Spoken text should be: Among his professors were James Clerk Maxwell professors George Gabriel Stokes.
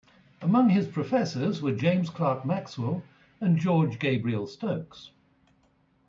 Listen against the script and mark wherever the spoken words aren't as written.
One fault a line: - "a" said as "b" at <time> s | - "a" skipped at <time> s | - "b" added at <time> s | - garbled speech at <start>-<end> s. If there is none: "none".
- "professors" said as "and" at 3.4 s